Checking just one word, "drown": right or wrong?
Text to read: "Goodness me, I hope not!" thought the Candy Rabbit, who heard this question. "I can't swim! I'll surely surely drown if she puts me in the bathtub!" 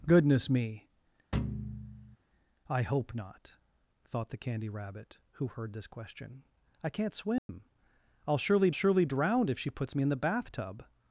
right